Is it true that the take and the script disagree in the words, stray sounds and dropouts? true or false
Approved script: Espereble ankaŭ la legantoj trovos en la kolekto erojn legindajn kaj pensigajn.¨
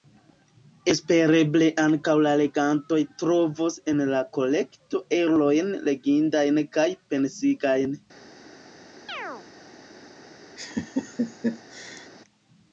true